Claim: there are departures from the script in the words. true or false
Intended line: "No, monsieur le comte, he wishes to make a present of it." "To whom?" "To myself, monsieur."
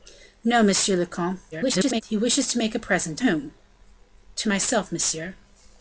true